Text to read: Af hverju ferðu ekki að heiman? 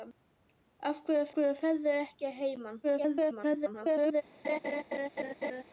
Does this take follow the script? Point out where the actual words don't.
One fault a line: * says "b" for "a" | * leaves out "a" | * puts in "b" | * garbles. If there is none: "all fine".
* puts in "hverju"
* garbles